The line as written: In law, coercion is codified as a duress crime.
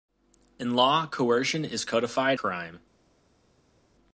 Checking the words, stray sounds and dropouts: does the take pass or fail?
fail